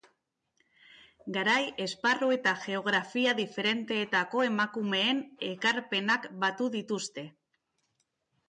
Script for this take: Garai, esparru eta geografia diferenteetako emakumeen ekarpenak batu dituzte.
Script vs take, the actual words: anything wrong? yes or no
no